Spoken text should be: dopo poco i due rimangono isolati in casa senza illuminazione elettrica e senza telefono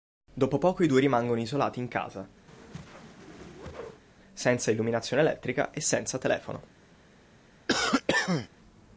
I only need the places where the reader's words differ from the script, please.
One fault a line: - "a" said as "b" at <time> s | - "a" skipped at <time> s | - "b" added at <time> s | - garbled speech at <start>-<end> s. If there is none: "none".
none